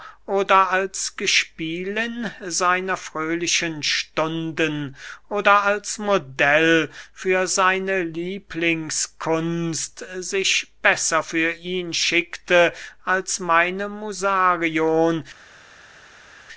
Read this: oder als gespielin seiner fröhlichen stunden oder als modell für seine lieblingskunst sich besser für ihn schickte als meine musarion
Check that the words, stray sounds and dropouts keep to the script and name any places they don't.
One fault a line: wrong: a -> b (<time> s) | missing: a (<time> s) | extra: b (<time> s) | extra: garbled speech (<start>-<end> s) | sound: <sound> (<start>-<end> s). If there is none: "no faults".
no faults